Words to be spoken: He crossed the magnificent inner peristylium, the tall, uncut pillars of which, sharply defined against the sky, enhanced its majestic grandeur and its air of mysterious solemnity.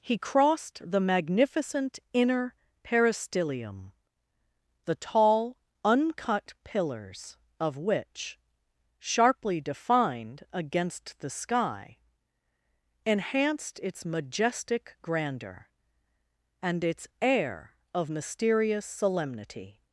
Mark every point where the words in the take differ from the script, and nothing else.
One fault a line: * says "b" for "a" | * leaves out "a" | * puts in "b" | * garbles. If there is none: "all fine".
all fine